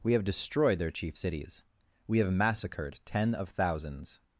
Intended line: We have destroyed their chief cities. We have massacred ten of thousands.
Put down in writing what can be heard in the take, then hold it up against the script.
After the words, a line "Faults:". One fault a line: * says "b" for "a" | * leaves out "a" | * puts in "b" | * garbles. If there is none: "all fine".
We have destroyed their chief cities. We have massacred ten of thousands.
Faults:
all fine